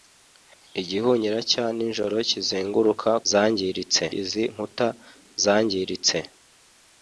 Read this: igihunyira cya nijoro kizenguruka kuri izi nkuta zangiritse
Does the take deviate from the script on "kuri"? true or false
true